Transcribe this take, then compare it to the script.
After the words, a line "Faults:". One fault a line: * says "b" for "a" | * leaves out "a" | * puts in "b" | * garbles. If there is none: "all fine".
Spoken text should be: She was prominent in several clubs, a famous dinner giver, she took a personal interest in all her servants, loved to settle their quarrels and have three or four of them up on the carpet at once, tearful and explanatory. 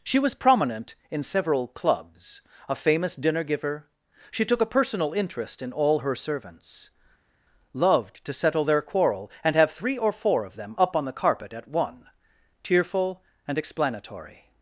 She was prominent in several clubs, a famous dinner giver, she took a personal interest in all her servants, loved to settle their quarrel and have three or four of them up on the carpet at one, tearful and explanatory.
Faults:
* says "quarrel" for "quarrels"
* says "one" for "once"